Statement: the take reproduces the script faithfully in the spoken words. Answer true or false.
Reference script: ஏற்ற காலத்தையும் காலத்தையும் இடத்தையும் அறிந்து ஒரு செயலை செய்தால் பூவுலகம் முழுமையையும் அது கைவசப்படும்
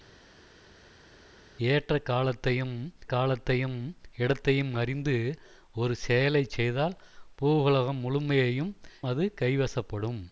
true